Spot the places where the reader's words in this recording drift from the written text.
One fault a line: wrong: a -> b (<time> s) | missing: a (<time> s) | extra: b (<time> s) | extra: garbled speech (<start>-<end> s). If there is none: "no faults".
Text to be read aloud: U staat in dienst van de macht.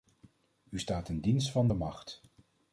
no faults